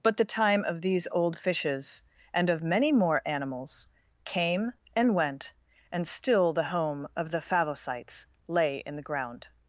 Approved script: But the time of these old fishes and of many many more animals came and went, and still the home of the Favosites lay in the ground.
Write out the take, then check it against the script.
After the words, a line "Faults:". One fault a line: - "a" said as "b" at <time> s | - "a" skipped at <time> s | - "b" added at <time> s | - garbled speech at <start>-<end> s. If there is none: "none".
But the time of these old fishes and of many more animals came and went, and still the home of the Favosites lay in the ground.
Faults:
- "many" skipped at 2.9 s